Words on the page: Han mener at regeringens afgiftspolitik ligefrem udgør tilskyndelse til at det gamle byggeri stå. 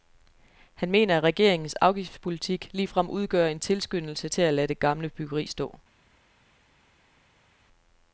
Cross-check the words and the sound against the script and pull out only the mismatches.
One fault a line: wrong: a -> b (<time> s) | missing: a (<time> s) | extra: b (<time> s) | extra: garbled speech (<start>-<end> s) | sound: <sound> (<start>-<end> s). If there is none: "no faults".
extra: en (3.5 s)
extra: lade (4.5 s)